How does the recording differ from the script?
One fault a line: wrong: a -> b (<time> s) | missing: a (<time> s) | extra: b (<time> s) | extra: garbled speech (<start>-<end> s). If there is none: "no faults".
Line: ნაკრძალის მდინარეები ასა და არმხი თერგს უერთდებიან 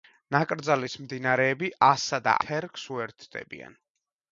missing: არმხი (2.4 s)